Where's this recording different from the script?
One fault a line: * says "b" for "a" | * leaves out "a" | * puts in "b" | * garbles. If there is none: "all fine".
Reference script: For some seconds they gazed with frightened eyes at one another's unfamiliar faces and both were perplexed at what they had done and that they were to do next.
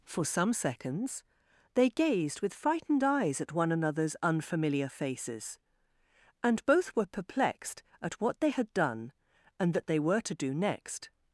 all fine